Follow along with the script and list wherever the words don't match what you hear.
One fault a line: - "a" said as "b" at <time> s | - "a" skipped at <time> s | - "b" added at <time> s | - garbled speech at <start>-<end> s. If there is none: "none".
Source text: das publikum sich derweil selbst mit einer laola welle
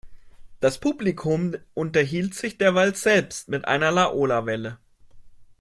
- "unterhielt" added at 1.7 s